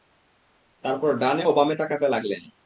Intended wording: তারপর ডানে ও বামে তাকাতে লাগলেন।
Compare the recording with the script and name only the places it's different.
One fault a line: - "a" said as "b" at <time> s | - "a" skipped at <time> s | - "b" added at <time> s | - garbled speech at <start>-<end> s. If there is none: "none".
none